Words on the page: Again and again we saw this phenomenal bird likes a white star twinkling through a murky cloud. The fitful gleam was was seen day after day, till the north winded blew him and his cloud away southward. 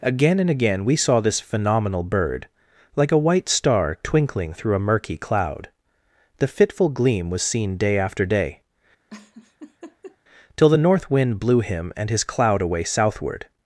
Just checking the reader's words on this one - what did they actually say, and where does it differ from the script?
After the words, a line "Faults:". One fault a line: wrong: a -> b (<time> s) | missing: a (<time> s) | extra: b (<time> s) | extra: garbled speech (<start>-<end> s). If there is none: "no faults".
Again and again we saw this phenomenal bird like a white star twinkling through a murky cloud. The fitful gleam was seen day after day, till the north wind blew him and his cloud away southward.
Faults:
wrong: likes -> like (3.0 s)
missing: was (7.4 s)
wrong: winded -> wind (11.1 s)